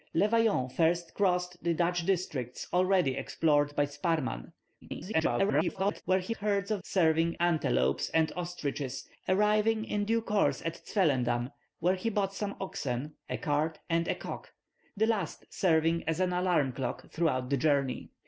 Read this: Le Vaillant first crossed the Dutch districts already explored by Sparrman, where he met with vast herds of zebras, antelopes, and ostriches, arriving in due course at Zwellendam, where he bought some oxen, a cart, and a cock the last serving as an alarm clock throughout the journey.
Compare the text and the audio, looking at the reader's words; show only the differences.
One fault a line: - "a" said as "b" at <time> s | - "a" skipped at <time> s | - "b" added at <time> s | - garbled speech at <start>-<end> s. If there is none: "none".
- garbled speech at 4.8-6.0 s
- "met with vast" skipped at 6.3 s
- "zebras" said as "serving" at 6.8 s